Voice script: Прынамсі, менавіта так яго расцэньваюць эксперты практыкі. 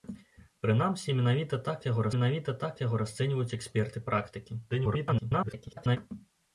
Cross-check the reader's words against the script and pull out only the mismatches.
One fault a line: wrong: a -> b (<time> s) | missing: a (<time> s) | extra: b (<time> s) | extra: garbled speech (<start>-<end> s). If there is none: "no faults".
extra: менавіта так яго (2.2 s)
extra: garbled speech (4.7-6.0 s)